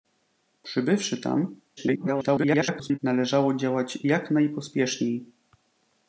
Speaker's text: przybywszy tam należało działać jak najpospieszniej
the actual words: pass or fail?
fail